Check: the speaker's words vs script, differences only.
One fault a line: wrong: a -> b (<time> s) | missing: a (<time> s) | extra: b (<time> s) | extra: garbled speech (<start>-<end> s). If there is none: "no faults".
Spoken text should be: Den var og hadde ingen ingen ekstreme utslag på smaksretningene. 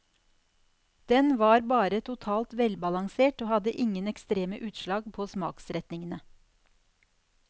extra: bare totalt velbalansert (1.7 s)
missing: ingen (4.1 s)